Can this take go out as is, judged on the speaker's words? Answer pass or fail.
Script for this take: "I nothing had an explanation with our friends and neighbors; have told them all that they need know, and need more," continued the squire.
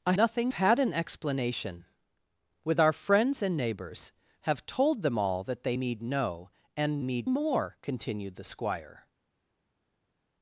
pass